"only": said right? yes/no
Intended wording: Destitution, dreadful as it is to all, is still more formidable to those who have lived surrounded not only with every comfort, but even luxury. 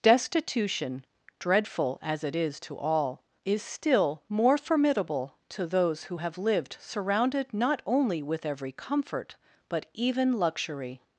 yes